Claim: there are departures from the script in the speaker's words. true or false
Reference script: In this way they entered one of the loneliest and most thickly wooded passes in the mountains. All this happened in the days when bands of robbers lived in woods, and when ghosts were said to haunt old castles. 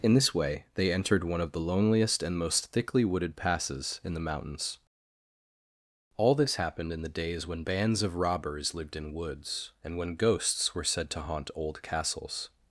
false